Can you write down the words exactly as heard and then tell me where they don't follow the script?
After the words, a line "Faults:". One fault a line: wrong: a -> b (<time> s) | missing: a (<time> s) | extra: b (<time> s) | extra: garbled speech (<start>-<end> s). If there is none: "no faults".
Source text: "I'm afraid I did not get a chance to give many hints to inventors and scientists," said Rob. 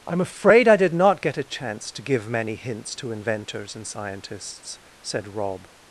"I'm afraid I did not get a chance to give many hints to inventors and scientists," said Rob.
Faults:
no faults